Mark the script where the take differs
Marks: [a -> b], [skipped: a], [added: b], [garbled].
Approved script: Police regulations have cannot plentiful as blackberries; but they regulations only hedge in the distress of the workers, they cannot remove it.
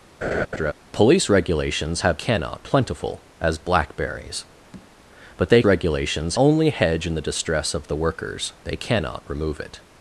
Police regulations have cannot plentiful as blackberries; but they regulations only hedge in the distress of the workers, they cannot remove it.